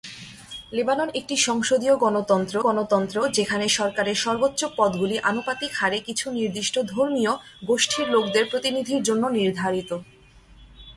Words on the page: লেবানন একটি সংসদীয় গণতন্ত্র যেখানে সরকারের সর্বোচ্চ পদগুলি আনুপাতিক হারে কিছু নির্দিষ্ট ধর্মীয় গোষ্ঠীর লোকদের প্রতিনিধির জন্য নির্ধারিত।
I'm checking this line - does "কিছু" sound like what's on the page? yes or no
yes